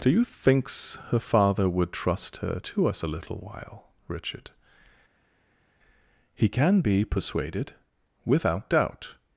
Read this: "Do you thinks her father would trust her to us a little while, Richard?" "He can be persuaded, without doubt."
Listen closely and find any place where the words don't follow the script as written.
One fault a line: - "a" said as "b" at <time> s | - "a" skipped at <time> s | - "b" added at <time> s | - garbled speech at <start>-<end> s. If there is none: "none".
none